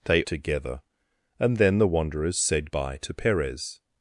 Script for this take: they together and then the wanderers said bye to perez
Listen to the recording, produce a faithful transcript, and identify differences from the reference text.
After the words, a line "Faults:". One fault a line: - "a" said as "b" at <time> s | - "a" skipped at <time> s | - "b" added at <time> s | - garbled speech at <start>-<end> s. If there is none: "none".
they together and then the wanderers said bye to perez
Faults:
none